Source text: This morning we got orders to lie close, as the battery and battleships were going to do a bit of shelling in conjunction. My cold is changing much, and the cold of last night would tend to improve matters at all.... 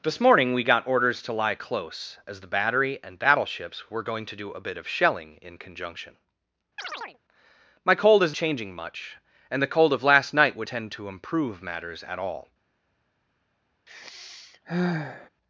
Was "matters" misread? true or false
false